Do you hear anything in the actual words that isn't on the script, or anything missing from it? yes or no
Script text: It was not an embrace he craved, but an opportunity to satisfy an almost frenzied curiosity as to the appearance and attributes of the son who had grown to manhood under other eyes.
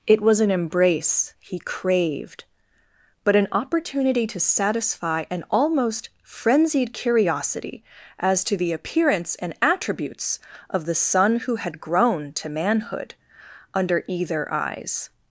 yes